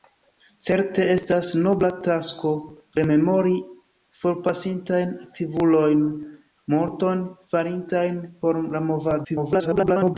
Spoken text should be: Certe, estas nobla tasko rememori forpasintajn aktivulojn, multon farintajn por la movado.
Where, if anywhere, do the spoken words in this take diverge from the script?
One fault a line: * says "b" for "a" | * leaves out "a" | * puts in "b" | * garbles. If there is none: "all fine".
* garbles